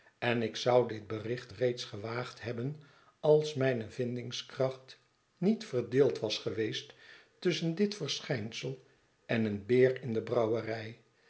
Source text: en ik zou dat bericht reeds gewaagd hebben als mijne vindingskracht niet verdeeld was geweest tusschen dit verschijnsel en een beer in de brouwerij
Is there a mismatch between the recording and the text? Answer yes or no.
yes